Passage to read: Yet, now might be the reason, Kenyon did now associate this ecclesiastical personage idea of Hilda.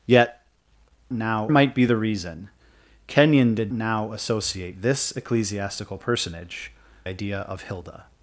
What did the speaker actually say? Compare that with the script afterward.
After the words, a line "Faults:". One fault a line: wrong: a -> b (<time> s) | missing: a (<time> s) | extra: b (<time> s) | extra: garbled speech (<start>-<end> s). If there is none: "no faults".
Yet, now might be the reason, Kenyon did now associate this ecclesiastical personage idea of Hilda.
Faults:
no faults